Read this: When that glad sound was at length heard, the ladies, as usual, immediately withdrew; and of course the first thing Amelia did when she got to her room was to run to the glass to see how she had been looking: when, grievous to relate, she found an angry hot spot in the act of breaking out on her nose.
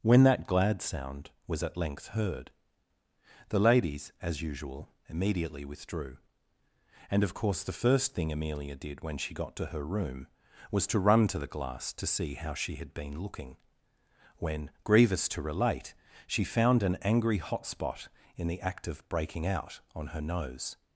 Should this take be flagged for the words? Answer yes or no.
no